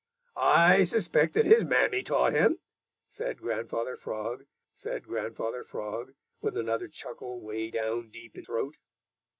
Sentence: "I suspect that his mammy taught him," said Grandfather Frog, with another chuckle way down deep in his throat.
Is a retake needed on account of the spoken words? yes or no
yes